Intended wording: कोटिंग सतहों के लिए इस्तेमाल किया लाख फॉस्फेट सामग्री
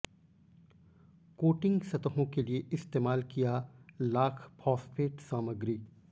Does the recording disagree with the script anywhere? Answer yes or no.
no